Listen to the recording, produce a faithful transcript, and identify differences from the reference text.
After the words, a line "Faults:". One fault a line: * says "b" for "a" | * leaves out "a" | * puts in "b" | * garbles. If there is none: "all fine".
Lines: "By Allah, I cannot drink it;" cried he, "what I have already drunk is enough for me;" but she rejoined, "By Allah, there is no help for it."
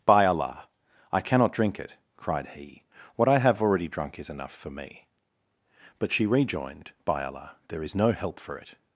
"By Allah, I cannot drink it;" cried he, "what I have already drunk is enough for me;" but she rejoined, "By Allah, there is no help for it."
Faults:
all fine